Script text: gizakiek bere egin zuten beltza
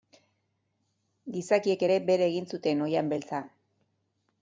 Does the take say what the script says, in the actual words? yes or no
no